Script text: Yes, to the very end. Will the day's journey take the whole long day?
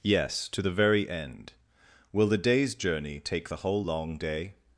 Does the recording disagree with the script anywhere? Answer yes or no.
no